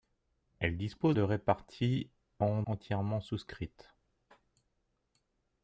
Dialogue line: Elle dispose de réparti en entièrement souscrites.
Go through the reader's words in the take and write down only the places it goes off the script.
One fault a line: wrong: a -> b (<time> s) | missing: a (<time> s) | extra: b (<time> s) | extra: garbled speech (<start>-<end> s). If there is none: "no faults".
no faults